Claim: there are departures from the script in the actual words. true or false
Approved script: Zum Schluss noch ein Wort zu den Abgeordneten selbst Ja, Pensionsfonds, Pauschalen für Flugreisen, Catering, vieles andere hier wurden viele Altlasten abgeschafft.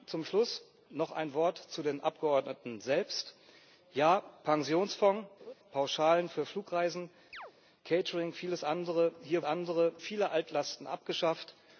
true